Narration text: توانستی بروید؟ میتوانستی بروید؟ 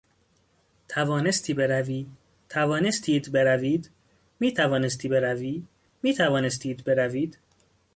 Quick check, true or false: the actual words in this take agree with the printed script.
false